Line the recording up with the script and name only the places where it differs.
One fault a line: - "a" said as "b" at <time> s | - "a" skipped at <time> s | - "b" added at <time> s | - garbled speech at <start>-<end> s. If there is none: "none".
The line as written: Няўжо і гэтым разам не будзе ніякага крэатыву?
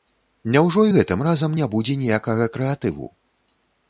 none